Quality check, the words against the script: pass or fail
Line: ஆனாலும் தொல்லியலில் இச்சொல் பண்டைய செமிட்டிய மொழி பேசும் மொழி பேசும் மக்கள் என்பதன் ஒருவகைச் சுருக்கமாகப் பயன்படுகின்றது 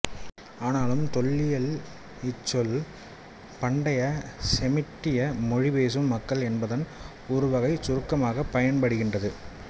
fail